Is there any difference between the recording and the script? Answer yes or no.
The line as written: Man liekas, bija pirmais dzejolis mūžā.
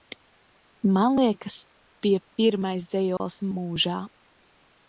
no